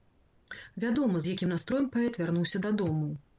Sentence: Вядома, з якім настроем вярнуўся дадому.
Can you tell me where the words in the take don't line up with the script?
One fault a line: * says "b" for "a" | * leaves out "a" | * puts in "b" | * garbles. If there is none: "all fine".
* puts in "паэт"